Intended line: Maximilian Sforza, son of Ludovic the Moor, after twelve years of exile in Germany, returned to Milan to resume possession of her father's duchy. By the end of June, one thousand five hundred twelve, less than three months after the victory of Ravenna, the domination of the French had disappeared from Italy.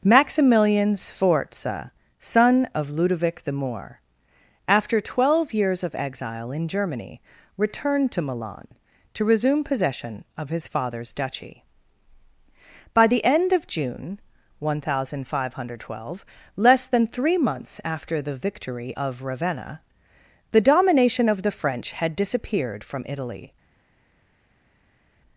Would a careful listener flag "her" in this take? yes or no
yes